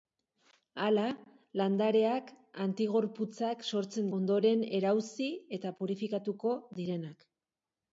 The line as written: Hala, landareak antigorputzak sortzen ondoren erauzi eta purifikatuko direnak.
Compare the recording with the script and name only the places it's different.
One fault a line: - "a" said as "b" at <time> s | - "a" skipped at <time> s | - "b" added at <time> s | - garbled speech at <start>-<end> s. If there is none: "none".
none